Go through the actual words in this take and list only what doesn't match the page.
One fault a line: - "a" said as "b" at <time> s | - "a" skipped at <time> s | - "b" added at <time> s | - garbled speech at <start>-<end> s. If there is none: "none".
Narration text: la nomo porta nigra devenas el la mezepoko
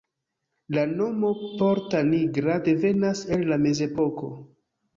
none